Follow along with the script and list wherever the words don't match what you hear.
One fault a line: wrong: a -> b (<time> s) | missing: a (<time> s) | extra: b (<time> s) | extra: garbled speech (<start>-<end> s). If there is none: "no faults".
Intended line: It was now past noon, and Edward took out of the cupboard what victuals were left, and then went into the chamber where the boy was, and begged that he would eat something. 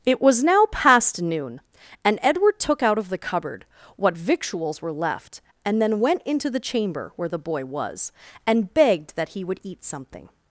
no faults